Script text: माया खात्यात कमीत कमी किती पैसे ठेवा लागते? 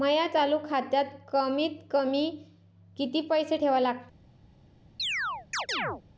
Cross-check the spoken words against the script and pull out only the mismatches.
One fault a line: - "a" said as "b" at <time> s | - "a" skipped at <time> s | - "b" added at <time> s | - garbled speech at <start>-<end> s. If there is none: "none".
- "चालू" added at 0.3 s